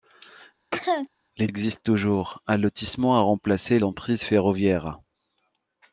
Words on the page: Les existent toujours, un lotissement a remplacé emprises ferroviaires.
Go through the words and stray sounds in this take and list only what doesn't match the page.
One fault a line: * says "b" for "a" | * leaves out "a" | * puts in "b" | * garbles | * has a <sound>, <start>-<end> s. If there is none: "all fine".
* has a cough, 0.7-1.1 s